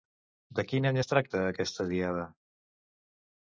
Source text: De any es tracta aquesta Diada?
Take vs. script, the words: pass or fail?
fail